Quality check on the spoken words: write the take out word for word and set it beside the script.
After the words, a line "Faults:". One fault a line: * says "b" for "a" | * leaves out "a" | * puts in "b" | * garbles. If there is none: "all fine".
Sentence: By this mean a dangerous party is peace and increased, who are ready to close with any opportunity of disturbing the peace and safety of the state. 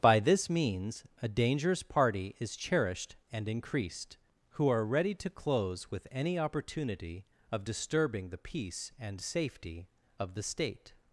By this means a dangerous party is cherished and increased, who are ready to close with any opportunity of disturbing the peace and safety of the state.
Faults:
* says "means" for "mean"
* says "cherished" for "peace"